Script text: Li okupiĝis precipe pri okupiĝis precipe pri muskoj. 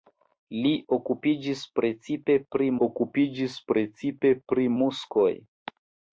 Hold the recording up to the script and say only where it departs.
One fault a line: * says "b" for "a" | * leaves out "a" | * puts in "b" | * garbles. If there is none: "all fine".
all fine